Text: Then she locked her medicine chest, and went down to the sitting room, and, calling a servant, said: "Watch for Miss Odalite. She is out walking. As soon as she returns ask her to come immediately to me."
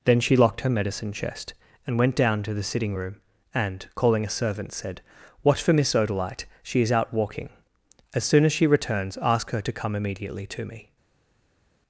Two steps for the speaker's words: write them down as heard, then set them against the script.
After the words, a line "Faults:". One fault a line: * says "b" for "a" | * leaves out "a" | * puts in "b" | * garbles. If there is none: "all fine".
Then she locked her medicine chest, and went down to the sitting room, and, calling a servant, said: "Watch for Miss Odalite. She is out walking. As soon as she returns ask her to come immediately to me."
Faults:
all fine